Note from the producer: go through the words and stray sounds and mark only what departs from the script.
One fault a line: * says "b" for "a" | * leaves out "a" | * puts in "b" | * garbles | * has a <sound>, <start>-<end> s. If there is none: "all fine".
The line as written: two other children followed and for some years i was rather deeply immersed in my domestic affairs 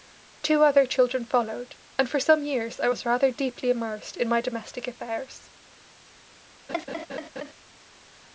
* has a laugh, 6.7-7.5 s